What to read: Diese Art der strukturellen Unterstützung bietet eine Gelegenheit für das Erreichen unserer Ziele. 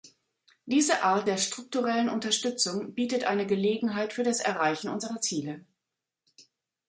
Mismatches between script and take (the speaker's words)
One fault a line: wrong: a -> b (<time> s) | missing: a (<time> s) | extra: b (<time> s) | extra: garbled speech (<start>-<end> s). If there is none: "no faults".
no faults